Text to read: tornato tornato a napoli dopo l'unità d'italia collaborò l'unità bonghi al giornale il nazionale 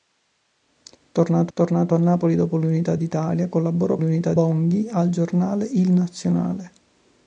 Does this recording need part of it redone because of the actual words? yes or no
no